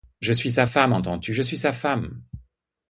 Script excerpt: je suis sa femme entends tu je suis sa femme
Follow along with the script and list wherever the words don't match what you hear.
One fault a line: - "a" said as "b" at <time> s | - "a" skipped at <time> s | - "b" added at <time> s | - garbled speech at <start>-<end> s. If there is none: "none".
none